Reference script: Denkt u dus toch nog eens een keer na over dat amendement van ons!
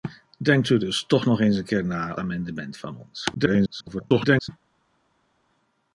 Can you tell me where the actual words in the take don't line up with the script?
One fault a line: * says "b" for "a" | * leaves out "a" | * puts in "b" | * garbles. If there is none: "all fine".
* leaves out "over dat"
* garbles